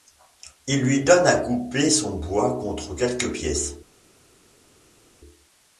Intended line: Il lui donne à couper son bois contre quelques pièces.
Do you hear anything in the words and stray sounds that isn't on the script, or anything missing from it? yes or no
no